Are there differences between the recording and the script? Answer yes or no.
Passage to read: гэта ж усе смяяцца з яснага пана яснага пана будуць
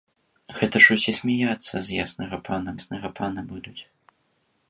no